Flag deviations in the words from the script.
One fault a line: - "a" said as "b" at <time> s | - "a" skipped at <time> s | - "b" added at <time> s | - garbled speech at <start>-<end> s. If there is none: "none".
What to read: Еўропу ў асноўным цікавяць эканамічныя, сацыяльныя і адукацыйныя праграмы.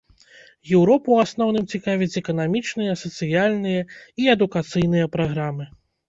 none